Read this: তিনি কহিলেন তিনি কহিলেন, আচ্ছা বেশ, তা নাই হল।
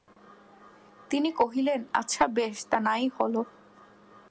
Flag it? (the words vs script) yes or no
yes